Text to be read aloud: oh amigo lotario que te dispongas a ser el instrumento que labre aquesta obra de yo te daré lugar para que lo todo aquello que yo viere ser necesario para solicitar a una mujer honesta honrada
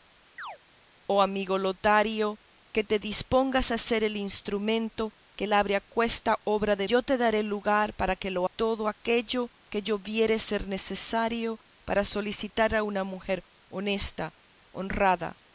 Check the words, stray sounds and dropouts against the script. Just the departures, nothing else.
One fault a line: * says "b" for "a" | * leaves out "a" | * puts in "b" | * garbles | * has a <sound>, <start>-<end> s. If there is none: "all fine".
* has a chirp, 0.4-0.6 s